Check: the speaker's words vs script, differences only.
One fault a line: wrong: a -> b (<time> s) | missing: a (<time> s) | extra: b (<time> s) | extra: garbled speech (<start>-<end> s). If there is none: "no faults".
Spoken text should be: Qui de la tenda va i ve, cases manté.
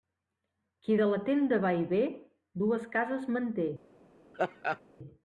extra: dues (2.6 s)